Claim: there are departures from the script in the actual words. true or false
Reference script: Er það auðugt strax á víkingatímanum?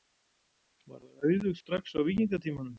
true